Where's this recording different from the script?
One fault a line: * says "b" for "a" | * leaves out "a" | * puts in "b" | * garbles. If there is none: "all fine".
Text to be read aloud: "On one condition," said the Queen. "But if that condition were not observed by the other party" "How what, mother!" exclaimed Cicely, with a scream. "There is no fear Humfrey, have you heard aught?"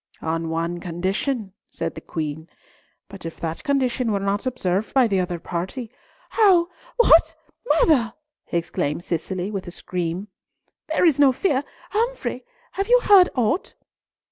all fine